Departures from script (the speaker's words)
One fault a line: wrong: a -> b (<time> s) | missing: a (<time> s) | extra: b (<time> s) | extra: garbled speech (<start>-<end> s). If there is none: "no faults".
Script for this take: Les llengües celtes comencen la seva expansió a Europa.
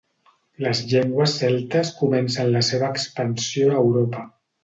no faults